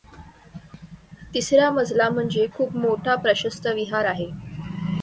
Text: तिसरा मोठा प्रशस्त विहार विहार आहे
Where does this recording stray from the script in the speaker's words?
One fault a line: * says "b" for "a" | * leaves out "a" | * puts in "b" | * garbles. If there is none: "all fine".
* puts in "मजला म्हणजे खूप"
* leaves out "विहार"